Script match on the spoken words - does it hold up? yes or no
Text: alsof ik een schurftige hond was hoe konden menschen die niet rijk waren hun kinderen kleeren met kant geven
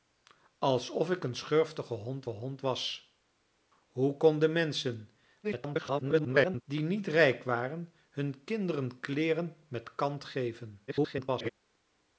no